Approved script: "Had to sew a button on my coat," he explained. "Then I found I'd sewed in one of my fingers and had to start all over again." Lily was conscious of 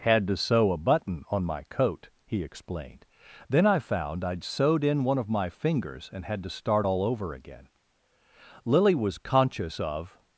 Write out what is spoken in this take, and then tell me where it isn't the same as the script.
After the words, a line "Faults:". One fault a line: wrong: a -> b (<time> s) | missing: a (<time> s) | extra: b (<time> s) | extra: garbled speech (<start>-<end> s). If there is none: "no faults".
"Had to sew a button on my coat," he explained. "Then I found I'd sewed in one of my fingers and had to start all over again." Lily was conscious of
Faults:
no faults